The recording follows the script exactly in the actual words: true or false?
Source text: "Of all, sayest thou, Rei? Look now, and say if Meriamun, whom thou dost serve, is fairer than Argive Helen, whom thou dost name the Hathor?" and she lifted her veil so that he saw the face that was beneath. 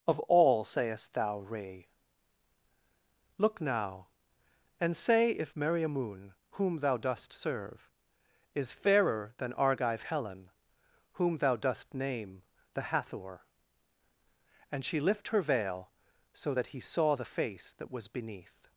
false